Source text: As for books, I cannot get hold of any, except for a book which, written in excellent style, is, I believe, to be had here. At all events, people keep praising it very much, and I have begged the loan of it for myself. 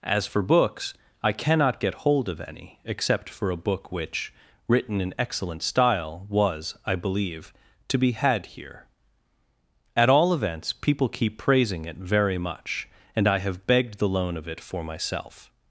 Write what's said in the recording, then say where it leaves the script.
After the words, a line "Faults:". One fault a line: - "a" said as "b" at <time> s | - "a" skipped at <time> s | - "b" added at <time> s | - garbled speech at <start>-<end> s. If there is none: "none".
As for books, I cannot get hold of any, except for a book which, written in excellent style, was, I believe, to be had here. At all events, people keep praising it very much, and I have begged the loan of it for myself.
Faults:
- "is" said as "was" at 6.3 s